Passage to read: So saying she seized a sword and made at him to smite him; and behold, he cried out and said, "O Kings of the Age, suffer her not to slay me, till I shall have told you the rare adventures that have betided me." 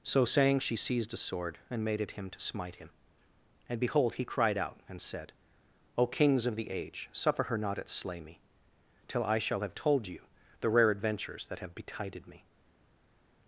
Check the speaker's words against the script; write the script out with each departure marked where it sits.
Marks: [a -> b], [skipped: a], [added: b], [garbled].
So saying she seized a sword and made at him to smite him; and behold, he cried out and said, "O Kings of the Age, suffer her not [to -> at] slay me, till I shall have told you the rare adventures that have betided me."